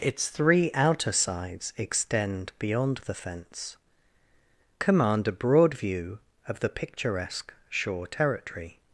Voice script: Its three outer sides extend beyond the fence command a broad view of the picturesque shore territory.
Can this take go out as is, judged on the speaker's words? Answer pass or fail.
pass